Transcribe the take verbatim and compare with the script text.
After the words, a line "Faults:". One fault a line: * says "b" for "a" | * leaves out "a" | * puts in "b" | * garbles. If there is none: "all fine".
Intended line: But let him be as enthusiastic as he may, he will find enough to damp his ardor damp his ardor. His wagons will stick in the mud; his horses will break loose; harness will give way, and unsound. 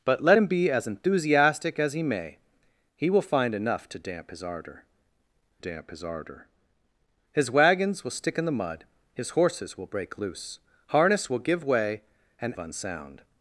But let him be as enthusiastic as he may, he will find enough to damp his ardor damp his ardor. His wagons will stick in the mud; his horses will break loose; harness will give way, and unsound.
Faults:
all fine